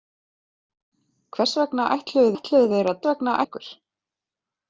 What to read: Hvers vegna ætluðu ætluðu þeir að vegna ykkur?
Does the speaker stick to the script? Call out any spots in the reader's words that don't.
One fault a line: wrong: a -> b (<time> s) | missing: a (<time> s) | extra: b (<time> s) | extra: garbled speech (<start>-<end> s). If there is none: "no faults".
no faults